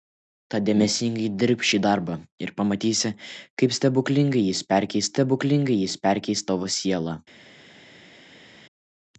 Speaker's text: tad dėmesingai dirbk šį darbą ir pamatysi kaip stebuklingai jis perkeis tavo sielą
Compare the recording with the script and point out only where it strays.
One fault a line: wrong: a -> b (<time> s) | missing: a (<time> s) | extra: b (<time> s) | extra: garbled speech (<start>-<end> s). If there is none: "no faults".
extra: stebuklingai jis perkeis (5.2 s)